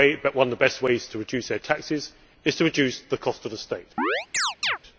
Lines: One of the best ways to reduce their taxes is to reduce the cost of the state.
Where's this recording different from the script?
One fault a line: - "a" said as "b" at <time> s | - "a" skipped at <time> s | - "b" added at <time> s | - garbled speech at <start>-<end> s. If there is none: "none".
none